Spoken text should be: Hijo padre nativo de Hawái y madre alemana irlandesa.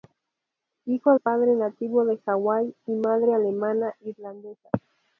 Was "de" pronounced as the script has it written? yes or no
yes